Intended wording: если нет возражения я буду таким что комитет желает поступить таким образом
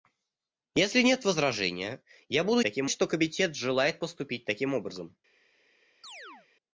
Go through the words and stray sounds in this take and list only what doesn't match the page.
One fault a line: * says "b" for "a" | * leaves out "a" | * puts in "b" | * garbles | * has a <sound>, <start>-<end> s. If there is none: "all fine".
* has a chirp, 6.0-6.5 s